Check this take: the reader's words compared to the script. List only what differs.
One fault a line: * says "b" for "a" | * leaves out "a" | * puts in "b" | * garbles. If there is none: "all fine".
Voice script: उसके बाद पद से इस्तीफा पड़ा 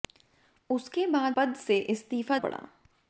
all fine